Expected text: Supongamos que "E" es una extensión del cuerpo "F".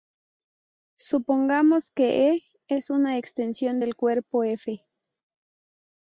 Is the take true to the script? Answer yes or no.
yes